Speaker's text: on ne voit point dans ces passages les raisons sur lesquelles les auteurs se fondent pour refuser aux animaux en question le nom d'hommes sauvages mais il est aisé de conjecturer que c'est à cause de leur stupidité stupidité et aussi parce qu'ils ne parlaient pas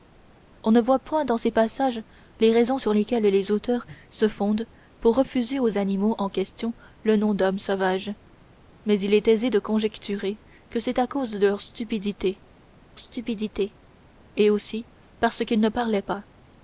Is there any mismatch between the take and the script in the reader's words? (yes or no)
no